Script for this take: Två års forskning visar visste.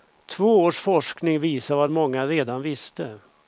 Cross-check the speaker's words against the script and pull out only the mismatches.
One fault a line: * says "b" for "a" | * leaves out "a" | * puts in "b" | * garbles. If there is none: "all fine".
* puts in "vad många redan"